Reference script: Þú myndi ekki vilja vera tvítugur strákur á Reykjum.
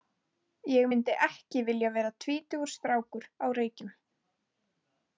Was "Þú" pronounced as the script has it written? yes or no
no